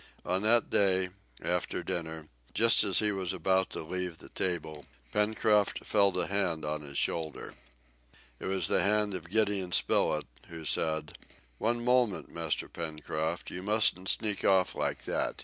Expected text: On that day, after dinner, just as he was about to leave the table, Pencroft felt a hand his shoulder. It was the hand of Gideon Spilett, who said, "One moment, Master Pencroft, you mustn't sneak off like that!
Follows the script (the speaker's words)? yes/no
no